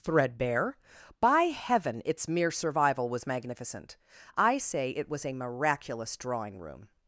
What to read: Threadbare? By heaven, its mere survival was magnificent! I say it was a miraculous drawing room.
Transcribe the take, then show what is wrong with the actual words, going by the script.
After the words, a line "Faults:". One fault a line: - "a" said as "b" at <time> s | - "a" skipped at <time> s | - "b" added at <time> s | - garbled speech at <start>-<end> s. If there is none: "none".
Threadbare? By heaven, its mere survival was magnificent! I say it was a miraculous drawing room.
Faults:
none